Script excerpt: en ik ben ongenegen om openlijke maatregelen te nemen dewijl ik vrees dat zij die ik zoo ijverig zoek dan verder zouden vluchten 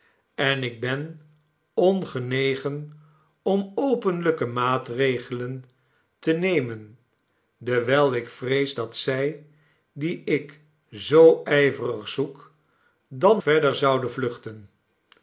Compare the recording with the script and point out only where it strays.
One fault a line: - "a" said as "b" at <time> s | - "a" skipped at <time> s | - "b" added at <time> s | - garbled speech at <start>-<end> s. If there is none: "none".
none